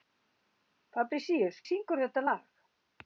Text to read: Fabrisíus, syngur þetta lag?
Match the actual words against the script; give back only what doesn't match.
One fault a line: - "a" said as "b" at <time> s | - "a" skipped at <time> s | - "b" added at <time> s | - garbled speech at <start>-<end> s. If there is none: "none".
none